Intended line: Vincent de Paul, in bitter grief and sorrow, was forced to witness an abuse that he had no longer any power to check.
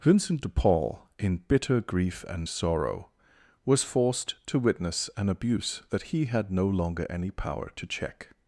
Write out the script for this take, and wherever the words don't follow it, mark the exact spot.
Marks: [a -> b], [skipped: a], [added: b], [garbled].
Vincent de Paul, in bitter grief and sorrow, was forced to witness an abuse that he had no longer any power to check.